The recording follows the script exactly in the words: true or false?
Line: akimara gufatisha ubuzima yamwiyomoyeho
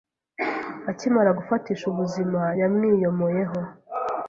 true